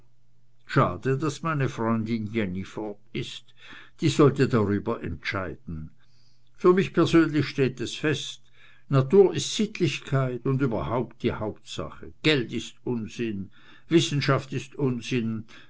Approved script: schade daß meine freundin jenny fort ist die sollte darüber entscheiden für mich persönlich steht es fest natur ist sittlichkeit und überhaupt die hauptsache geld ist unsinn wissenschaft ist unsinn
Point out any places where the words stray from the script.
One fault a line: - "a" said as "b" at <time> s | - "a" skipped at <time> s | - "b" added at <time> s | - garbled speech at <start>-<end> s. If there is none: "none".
none